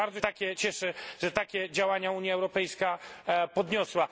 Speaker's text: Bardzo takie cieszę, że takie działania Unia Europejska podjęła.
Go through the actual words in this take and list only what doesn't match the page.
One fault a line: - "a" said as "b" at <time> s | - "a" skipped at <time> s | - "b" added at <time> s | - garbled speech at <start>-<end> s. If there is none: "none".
none